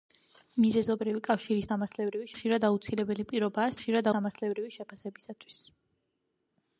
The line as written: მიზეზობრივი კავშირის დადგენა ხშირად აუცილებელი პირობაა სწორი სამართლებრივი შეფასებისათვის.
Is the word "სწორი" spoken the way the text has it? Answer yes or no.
no